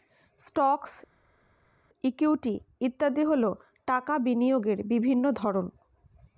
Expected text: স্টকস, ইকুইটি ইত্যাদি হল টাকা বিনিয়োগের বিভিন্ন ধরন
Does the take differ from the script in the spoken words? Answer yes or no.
no